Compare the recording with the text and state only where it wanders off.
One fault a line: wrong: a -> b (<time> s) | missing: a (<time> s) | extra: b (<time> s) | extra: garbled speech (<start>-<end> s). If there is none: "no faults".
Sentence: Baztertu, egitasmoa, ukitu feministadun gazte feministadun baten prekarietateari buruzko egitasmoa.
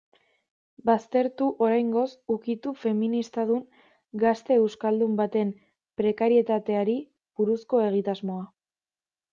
wrong: egitasmoa -> oraingoz (1.6 s)
wrong: feministadun -> euskaldun (4.6 s)